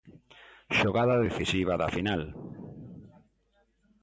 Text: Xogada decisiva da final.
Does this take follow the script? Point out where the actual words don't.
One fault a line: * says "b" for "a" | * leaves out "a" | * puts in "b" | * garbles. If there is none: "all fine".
all fine